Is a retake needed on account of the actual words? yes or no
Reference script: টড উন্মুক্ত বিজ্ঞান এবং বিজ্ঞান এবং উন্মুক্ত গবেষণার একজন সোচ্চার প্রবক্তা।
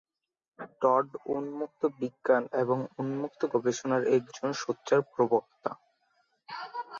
yes